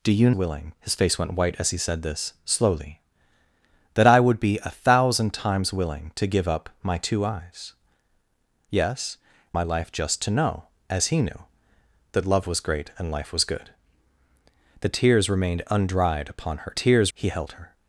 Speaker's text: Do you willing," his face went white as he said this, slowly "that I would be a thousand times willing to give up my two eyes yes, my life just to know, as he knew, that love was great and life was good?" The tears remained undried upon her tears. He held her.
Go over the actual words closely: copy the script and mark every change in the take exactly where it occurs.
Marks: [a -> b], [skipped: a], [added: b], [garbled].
Do you willing," his face went white as he said this, slowly "that I would be a thousand times willing to give up my two eyes yes, my life just to know, as he knew, that love was great and life was good?" The tears remained undried upon her tears. He held her.